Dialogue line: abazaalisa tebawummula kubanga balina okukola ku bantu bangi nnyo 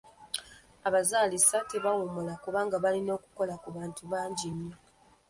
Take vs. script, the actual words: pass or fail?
pass